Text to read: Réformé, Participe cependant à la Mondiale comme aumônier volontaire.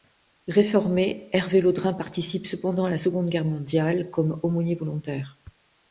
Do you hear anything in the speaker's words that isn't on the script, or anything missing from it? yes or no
yes